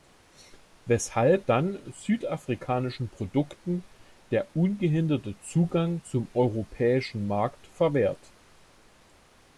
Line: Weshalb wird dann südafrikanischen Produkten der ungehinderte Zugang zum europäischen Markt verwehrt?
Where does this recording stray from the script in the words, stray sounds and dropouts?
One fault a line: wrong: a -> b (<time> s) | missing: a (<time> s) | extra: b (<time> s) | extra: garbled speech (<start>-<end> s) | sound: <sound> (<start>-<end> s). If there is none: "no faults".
missing: wird (1.4 s)